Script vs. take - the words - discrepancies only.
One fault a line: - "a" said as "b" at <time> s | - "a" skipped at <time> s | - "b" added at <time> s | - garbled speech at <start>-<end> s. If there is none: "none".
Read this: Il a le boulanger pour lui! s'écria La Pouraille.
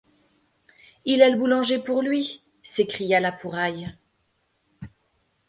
none